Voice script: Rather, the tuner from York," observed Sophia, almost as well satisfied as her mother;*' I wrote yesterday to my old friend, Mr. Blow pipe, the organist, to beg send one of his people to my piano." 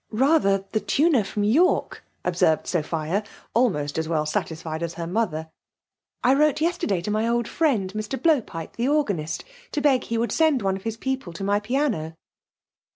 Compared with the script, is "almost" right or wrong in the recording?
right